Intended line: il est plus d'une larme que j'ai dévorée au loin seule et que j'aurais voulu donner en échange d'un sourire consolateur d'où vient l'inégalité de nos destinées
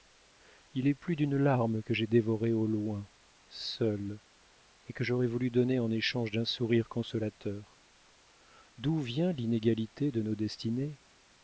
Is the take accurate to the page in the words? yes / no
yes